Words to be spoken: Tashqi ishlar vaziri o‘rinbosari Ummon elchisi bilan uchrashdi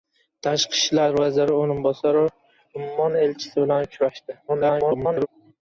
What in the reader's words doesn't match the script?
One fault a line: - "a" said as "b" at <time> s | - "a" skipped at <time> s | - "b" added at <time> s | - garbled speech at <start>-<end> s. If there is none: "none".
- garbled speech at 4.5-5.3 s